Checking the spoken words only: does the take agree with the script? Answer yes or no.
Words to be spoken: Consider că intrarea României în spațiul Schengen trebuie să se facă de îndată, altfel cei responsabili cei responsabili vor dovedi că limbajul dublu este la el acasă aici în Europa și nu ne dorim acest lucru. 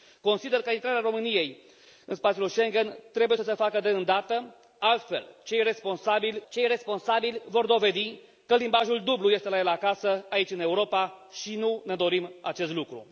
yes